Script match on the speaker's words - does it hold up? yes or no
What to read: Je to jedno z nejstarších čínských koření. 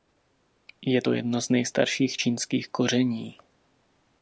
yes